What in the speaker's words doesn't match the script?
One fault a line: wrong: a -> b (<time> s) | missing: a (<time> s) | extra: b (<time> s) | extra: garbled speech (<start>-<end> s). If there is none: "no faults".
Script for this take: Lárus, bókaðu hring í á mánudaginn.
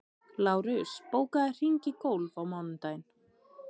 extra: golf (2.1 s)